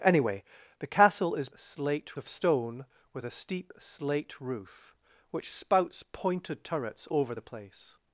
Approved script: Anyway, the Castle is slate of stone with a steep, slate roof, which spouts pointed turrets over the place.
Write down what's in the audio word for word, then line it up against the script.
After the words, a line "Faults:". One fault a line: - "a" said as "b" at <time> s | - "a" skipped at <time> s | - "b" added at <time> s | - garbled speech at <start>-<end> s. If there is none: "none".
Anyway, the Castle is slate of stone with a steep, slate roof, which spouts pointed turrets over the place.
Faults:
none